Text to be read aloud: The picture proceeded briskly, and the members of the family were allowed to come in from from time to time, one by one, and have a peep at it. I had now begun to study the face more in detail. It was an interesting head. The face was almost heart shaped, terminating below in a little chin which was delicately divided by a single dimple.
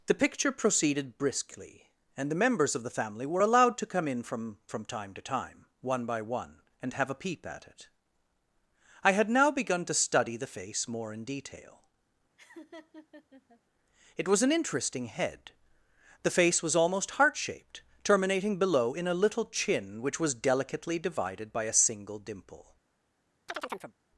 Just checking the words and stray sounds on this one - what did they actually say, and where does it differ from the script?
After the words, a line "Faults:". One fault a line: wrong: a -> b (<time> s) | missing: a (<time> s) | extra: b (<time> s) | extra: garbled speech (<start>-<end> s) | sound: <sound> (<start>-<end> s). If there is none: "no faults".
The picture proceeded briskly, and the members of the family were allowed to come in from from time to time, one by one, and have a peep at it. I had now begun to study the face more in detail. It was an interesting head. The face was almost heart shaped, terminating below in a little chin which was delicately divided by a single dimple.
Faults:
sound: laugh (12.4-13.6 s)
sound: chirp (23.5-23.9 s)